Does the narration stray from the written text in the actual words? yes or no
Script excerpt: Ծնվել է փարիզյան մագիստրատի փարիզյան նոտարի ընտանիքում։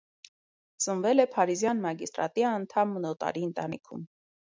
yes